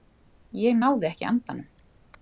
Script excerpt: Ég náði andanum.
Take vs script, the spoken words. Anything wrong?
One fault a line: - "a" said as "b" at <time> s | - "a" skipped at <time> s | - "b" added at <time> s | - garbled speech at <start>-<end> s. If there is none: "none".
- "ekki" added at 1.1 s